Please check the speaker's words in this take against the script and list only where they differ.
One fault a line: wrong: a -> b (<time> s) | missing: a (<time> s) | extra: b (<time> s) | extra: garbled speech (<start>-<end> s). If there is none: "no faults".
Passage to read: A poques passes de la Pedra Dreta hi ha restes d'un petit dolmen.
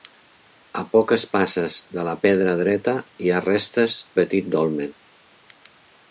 missing: d'un (4.0 s)